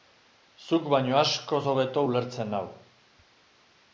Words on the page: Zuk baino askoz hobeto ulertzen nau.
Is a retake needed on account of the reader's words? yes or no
no